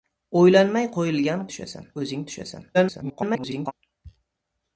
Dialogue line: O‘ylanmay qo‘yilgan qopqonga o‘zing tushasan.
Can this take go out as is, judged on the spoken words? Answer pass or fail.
fail